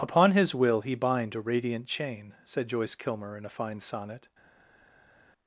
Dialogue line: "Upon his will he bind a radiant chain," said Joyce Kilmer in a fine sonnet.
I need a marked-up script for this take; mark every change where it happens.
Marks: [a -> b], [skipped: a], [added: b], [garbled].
"Upon his will he bind a radiant chain," said Joyce Kilmer in a fine sonnet.